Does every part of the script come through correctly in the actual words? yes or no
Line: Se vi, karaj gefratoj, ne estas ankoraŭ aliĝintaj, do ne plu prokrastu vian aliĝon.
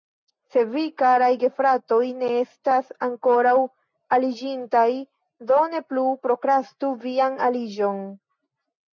yes